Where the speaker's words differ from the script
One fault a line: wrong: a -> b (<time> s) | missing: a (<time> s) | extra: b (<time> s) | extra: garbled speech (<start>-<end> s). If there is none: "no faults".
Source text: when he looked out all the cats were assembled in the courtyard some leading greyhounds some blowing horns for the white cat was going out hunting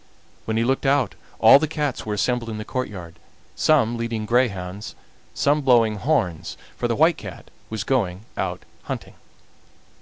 no faults